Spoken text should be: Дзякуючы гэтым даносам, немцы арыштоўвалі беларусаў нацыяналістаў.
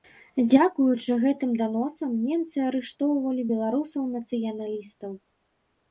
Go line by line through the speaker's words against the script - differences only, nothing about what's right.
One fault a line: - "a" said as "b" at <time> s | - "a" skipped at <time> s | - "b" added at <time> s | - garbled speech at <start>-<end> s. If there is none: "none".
none